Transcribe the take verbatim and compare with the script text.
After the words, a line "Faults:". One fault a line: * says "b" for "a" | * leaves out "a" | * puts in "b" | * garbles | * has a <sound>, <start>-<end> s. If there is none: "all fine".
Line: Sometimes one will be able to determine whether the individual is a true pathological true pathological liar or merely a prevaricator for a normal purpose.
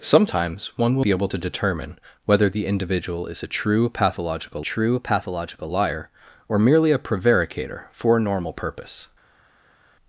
Sometimes one will be able to determine whether the individual is a true pathological true pathological liar or merely a prevaricator for a normal purpose.
Faults:
all fine